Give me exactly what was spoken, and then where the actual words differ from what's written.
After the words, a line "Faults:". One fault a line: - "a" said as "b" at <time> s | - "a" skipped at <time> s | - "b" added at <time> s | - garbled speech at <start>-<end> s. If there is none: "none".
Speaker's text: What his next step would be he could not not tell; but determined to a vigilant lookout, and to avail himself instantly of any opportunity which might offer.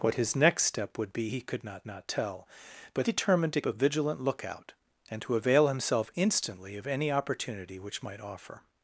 What his next step would be he could not not tell; but determined to a vigilant lookout, and to avail himself instantly of any opportunity which might offer.
Faults:
none